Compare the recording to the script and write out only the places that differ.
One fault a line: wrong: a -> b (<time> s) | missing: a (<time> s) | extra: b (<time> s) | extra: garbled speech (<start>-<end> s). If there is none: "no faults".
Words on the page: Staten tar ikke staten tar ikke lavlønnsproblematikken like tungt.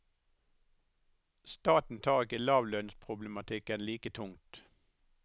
missing: staten tar ikke (2.4 s)